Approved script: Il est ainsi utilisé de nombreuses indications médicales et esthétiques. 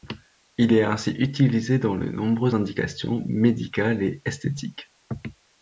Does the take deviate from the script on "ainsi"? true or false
false